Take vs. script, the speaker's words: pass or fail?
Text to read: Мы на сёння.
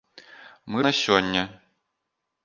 pass